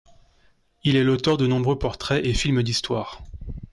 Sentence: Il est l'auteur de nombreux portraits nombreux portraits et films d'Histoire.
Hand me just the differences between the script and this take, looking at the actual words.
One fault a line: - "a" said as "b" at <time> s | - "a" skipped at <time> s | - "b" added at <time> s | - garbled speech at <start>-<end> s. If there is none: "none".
- "nombreux portraits" skipped at 2.3 s